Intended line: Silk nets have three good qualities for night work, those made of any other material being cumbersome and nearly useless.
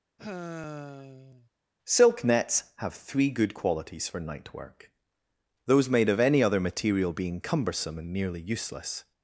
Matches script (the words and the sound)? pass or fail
fail